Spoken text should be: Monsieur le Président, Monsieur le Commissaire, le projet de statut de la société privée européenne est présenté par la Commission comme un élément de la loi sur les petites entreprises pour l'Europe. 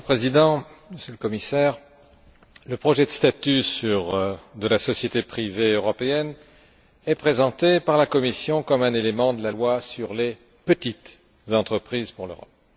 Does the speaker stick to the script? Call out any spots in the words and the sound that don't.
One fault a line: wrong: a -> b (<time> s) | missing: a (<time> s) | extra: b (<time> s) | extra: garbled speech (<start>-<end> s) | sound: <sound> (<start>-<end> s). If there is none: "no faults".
no faults